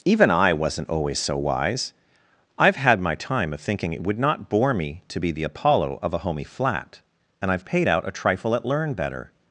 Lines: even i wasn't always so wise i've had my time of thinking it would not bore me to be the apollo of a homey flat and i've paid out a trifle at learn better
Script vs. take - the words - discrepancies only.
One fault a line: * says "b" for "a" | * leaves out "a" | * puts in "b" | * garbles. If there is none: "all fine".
all fine